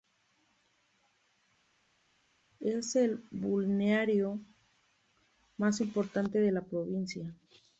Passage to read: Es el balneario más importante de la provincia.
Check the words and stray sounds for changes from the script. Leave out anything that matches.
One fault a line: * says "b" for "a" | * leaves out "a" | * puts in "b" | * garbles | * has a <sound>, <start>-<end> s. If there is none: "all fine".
all fine